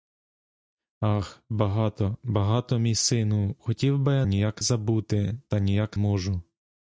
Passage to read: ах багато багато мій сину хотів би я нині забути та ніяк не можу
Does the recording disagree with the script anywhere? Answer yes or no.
yes